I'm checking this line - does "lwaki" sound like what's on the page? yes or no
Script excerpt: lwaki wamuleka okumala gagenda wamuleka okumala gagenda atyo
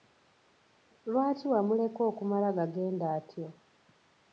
yes